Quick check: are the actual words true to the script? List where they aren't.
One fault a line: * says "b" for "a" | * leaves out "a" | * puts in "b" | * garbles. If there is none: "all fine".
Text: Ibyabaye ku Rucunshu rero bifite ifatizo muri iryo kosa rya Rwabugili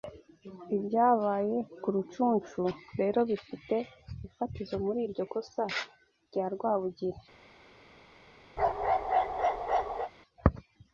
all fine